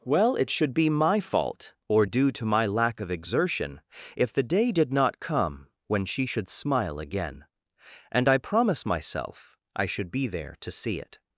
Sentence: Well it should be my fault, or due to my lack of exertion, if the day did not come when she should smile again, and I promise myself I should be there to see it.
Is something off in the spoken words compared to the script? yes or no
no